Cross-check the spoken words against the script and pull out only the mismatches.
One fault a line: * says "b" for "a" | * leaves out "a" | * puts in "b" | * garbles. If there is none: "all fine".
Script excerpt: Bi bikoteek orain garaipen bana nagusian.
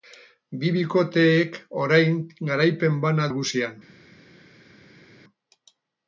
all fine